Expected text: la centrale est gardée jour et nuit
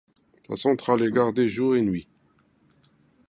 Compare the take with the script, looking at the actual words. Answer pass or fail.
pass